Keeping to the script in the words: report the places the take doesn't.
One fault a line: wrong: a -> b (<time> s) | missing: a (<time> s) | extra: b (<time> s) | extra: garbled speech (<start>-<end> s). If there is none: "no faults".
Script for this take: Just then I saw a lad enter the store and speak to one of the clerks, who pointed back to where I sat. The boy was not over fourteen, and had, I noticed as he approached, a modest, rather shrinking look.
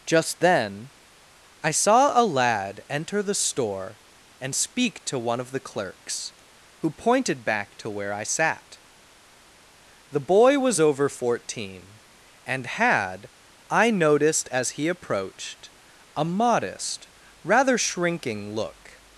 missing: not (10.8 s)